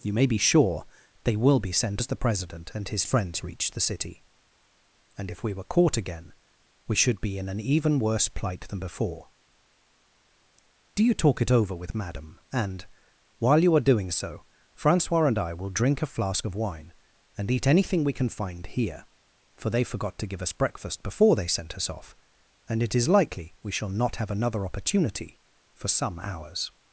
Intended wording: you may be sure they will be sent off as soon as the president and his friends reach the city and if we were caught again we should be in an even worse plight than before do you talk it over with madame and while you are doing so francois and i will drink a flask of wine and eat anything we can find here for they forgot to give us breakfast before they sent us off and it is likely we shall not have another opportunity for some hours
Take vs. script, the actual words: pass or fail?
fail